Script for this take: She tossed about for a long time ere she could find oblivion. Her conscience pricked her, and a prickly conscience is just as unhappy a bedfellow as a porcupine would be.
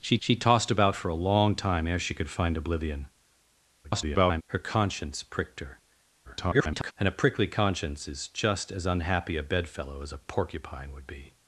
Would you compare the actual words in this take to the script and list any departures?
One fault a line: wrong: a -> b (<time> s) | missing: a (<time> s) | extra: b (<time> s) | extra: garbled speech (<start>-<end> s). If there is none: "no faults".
extra: she (0.2 s)
extra: garbled speech (3.8-4.4 s)
extra: garbled speech (6.2-6.9 s)